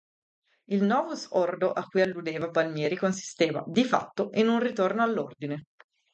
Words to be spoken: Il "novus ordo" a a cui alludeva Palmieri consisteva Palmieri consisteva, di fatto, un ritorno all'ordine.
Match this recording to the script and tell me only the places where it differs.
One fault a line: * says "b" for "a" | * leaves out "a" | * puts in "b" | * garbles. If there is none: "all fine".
* leaves out "a"
* leaves out "Palmieri consisteva"
* puts in "in"